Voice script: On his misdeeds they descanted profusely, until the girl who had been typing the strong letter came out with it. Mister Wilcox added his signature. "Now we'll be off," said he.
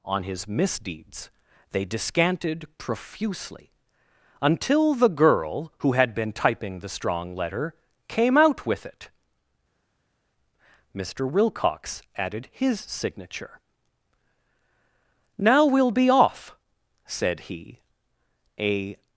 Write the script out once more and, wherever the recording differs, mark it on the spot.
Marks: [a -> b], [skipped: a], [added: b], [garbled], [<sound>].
On his misdeeds they descanted profusely, until the girl who had been typing the strong letter came out with it. Mister Wilcox added his signature. "Now we'll be off," said he. [added: A]